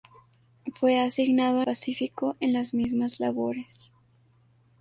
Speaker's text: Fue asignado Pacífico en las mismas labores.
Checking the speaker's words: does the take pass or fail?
pass